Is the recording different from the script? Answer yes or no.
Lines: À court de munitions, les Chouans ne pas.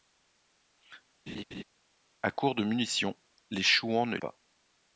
no